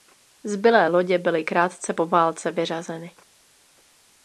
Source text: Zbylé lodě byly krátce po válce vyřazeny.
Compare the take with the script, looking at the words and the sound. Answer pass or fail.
pass